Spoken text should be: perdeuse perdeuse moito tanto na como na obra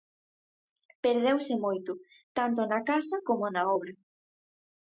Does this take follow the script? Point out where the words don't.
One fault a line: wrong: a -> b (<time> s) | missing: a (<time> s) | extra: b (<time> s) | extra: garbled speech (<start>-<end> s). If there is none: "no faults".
missing: perdeuse (1.5 s)
extra: casa (2.9 s)